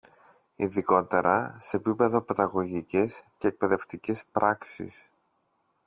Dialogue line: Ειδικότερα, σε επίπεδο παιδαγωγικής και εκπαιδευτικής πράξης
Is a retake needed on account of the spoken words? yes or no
no